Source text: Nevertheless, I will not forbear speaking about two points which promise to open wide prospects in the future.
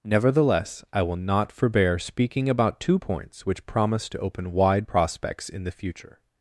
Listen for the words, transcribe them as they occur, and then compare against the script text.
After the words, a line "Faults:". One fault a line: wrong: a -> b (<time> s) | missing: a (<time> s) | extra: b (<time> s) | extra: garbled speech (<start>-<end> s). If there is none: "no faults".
Nevertheless, I will not forbear speaking about two points which promise to open wide prospects in the future.
Faults:
no faults